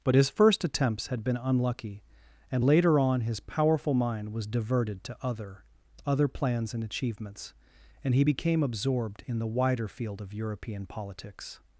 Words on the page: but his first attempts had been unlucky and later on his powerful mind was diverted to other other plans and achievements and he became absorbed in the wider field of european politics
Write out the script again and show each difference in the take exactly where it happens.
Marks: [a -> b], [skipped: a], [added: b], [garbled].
but his first attempts had been unlucky and later on his powerful mind was diverted to other other plans and achievements and he became absorbed in the wider field of european politics